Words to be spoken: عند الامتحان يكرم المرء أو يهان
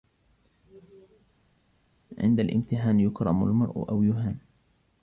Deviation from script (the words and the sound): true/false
false